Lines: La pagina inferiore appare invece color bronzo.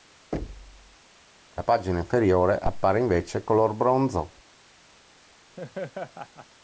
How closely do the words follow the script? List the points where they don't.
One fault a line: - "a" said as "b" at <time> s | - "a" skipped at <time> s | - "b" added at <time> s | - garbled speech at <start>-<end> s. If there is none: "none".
none